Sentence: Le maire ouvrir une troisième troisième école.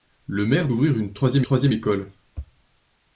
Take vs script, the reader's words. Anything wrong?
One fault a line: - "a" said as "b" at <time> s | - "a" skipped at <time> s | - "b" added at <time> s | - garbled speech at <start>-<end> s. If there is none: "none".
none